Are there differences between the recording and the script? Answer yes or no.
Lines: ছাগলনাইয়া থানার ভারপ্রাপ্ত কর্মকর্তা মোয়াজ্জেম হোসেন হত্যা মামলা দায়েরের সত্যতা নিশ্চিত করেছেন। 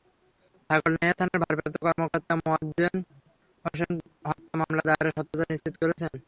no